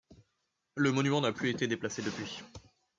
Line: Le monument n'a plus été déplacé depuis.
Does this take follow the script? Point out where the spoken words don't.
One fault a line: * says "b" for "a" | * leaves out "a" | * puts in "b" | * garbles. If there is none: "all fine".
all fine